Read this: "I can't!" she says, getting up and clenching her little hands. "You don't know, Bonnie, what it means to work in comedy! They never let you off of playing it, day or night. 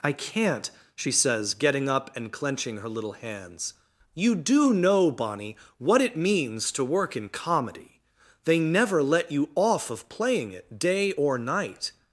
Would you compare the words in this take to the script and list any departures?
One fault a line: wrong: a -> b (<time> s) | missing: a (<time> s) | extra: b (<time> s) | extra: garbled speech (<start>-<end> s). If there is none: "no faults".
wrong: don't -> do (4.3 s)